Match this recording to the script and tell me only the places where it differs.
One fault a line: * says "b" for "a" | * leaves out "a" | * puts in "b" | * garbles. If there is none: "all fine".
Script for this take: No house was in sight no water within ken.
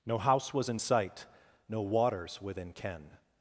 * says "waters" for "water"